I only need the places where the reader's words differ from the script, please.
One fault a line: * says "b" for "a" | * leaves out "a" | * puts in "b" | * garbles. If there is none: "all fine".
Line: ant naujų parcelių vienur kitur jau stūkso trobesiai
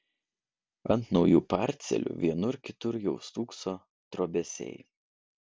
all fine